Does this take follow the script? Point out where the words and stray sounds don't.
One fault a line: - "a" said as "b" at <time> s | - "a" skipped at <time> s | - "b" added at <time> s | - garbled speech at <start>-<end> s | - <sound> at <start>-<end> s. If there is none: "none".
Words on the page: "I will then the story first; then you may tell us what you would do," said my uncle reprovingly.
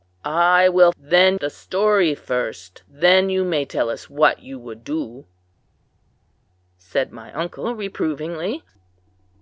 none